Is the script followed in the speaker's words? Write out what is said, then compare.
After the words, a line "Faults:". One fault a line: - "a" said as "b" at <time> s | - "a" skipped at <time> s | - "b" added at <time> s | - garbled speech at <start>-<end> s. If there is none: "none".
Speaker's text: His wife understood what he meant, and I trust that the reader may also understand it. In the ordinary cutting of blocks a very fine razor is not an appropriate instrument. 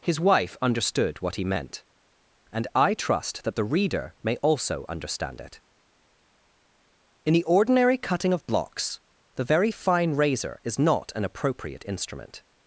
His wife understood what he meant, and I trust that the reader may also understand it. In the ordinary cutting of blocks the very fine razor is not an appropriate instrument.
Faults:
- "a" said as "the" at 9.4 s